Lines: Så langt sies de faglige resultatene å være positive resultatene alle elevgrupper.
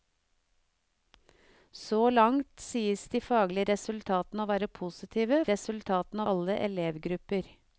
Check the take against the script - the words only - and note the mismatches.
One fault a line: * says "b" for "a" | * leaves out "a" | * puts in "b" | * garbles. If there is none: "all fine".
all fine